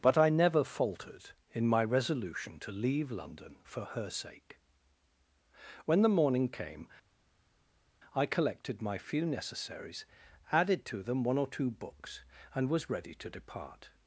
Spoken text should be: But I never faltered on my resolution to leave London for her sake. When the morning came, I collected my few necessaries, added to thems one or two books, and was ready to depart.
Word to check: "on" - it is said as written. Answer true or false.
false